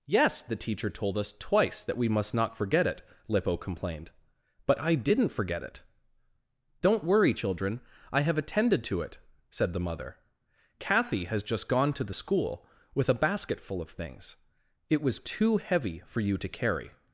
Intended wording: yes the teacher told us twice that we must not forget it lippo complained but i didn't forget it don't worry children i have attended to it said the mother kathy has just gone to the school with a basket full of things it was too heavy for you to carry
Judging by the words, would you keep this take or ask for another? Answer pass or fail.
pass